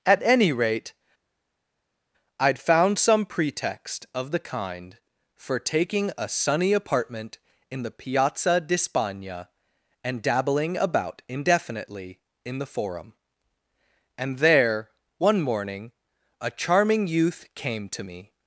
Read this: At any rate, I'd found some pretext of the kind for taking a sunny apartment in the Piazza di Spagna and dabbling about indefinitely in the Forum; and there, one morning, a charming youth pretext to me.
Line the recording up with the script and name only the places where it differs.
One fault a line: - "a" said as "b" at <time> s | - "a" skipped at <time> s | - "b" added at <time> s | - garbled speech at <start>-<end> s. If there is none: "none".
- "pretext" said as "came" at 17.5 s